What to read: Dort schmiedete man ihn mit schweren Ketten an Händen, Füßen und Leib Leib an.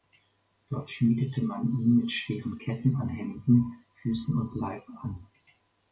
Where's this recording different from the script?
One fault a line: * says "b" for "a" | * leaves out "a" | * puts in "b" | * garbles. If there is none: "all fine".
* leaves out "Leib"